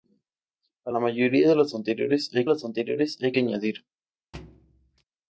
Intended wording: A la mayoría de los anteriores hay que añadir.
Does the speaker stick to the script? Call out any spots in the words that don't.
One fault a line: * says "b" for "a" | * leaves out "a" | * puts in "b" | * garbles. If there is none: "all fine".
* puts in "los anteriores hay"